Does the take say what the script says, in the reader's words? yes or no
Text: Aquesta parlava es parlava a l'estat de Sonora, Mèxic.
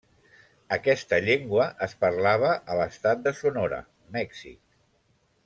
no